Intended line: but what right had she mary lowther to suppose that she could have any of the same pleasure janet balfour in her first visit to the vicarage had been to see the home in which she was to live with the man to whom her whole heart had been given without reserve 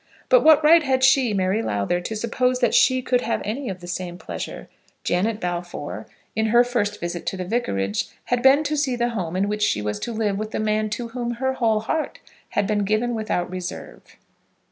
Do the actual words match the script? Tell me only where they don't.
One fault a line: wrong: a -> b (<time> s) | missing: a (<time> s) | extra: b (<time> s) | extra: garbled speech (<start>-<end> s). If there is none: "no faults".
no faults